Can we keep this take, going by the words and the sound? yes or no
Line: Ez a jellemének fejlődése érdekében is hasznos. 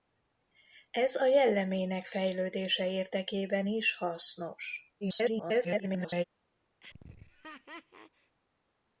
no